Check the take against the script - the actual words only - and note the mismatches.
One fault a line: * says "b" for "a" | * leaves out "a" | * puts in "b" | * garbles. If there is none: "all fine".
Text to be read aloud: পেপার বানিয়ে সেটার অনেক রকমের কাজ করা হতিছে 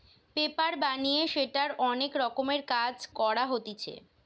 all fine